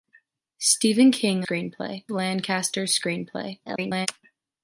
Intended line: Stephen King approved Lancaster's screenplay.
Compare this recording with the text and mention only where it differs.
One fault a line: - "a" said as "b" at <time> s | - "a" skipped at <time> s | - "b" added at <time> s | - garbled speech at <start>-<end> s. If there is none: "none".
- "approved" said as "screenplay" at 1.4 s
- garbled speech at 3.7-4.1 s